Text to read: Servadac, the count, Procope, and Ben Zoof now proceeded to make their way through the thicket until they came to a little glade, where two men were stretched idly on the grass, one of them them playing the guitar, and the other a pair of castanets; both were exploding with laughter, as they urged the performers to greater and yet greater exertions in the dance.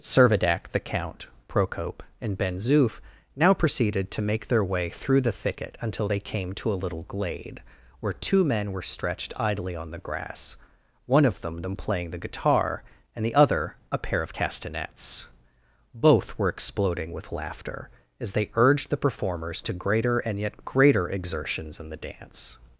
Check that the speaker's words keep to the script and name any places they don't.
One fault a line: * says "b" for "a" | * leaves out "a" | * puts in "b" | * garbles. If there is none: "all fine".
all fine